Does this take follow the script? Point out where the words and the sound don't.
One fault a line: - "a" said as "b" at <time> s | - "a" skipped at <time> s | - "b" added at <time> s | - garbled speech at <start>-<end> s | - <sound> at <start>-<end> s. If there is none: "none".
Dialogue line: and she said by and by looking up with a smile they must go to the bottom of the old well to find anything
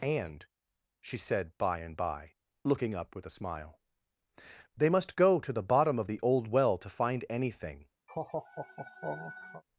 - laugh at 8.1-9.6 s